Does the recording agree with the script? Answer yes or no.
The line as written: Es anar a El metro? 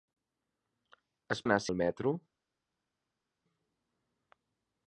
yes